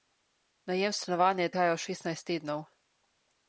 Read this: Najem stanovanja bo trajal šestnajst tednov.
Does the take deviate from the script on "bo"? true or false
true